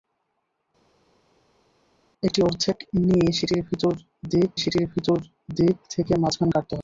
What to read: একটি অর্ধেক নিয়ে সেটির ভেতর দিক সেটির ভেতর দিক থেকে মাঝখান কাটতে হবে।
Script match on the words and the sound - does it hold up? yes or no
yes